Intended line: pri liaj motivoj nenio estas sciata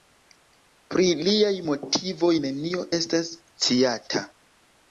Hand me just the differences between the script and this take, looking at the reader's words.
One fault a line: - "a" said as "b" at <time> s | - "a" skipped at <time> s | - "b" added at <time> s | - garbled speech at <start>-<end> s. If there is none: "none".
none